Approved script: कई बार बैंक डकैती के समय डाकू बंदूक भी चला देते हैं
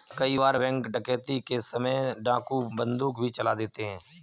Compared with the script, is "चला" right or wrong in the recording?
right